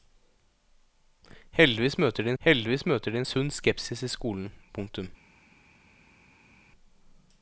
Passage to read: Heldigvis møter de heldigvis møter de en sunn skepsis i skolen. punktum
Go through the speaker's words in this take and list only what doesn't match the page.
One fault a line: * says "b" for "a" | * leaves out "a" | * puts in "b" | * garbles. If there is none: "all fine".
all fine